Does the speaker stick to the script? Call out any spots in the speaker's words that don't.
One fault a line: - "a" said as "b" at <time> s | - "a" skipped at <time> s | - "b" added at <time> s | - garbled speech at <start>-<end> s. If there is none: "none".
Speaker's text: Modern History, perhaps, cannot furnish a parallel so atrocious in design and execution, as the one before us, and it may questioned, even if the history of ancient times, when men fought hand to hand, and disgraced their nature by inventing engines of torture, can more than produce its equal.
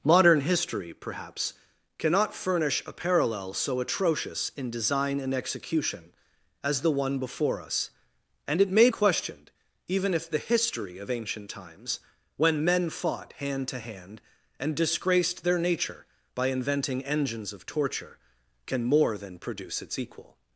none